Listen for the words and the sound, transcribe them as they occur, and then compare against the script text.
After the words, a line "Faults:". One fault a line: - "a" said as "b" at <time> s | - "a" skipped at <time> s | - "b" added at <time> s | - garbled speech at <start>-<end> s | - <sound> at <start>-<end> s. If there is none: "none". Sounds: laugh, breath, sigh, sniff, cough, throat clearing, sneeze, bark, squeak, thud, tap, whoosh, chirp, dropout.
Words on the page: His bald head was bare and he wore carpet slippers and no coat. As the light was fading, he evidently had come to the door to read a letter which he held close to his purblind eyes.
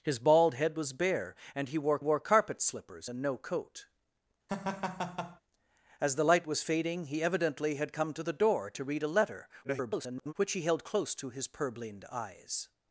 His bald head was bare and he wore wore carpet slippers and no coat. As the light was fading, he evidently had come to the door to read a letter [garbled] which he held close to his purblind eyes.
Faults:
- "wore" added at 2.0 s
- laugh at 4.5-5.4 s
- garbled speech at 9.6-10.3 s